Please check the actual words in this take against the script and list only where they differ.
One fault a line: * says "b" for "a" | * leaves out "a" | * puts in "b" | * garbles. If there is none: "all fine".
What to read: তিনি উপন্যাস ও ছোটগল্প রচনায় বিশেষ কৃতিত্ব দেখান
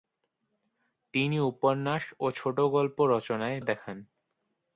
* leaves out "বিশেষ কৃতিত্ব"